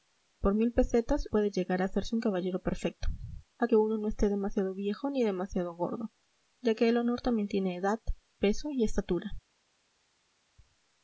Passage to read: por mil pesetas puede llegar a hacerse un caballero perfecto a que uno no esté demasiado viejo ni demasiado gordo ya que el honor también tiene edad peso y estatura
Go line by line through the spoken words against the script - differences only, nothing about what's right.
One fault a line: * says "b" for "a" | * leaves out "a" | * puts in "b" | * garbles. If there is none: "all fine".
all fine